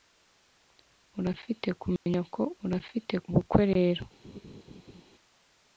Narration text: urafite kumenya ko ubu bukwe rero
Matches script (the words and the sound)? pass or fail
fail